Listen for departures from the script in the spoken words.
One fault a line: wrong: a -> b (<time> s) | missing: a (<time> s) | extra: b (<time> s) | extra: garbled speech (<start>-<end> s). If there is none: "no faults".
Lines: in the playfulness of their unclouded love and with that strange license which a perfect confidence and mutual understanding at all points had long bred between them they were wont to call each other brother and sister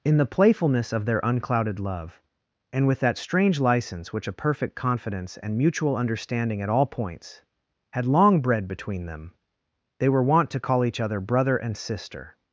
no faults